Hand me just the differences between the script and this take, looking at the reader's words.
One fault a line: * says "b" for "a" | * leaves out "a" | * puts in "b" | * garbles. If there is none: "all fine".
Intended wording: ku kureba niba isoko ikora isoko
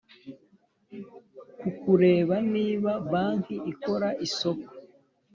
* says "banki" for "isoko"